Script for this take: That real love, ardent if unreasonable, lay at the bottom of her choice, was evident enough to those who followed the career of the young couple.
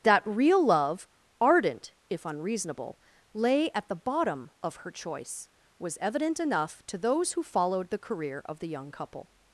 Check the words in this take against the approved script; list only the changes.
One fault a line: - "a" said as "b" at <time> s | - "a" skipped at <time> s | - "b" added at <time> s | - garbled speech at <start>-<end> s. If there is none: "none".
none